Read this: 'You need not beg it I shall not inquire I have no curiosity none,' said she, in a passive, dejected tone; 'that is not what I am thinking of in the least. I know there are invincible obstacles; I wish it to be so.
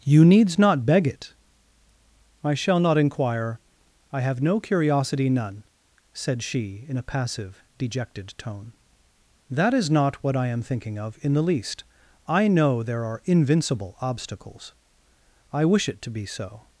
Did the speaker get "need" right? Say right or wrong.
wrong